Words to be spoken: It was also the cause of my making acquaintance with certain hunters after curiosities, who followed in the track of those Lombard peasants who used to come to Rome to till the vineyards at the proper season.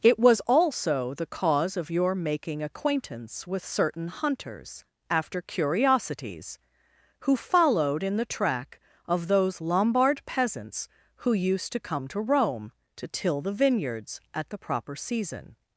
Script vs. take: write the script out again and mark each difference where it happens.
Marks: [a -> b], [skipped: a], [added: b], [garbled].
It was also the cause of [my -> your] making acquaintance with certain hunters after curiosities, who followed in the track of those Lombard peasants who used to come to Rome to till the vineyards at the proper season.